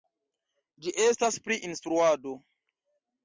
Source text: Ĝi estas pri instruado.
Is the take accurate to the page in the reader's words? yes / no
yes